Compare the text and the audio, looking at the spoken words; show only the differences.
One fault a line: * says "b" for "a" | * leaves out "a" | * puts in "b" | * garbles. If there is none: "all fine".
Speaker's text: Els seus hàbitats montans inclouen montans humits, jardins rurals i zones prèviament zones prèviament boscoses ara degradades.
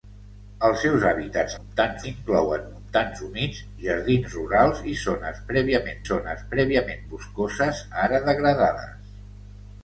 all fine